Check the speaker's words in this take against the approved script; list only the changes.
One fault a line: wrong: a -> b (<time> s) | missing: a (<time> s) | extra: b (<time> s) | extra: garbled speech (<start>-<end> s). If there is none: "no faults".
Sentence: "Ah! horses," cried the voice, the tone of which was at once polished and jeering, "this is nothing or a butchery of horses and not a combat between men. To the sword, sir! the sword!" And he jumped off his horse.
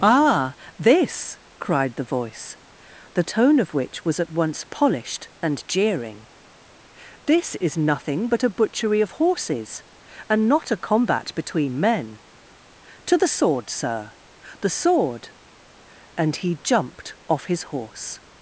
wrong: horses -> this (0.8 s)
wrong: or -> but (8.3 s)